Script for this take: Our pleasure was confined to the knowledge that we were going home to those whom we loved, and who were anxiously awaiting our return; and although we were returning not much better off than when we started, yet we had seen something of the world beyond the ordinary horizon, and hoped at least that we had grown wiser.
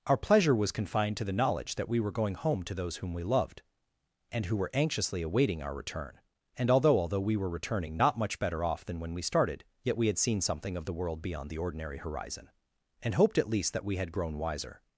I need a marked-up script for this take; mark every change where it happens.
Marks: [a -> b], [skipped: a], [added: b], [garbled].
Our pleasure was confined to the knowledge that we were going home to those whom we loved, and who were anxiously awaiting our return; and although [added: although] we were returning not much better off than when we started, yet we had seen something of the world beyond the ordinary horizon, and hoped at least that we had grown wiser.